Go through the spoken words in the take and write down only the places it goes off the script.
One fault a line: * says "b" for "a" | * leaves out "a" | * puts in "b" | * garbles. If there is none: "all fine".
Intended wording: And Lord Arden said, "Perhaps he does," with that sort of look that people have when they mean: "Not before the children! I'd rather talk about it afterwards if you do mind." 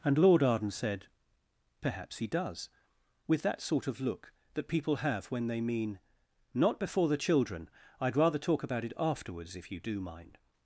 all fine